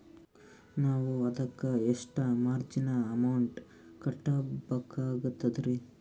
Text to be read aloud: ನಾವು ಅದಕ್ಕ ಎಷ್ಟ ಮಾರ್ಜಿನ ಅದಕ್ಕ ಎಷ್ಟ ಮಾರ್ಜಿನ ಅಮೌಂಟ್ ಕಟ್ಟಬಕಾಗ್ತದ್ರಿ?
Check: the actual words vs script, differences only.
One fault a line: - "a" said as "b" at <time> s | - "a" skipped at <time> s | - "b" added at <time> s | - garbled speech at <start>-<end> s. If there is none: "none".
- "ಅದಕ್ಕ ಎಷ್ಟ ಮಾರ್ಜಿನ" skipped at 2.9 s